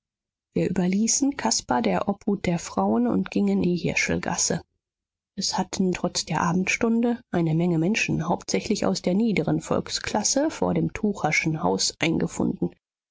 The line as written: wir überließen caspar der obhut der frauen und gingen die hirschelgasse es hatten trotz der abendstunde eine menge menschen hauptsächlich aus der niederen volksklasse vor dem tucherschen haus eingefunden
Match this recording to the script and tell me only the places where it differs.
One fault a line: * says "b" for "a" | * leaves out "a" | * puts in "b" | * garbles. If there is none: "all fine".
all fine